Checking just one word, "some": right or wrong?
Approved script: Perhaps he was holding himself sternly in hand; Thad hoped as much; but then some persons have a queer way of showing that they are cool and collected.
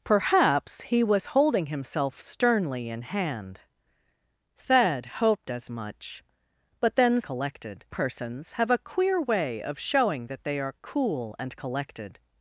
wrong